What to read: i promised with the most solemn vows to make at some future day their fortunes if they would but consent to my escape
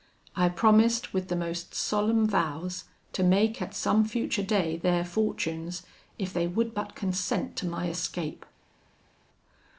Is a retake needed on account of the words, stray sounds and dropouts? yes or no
no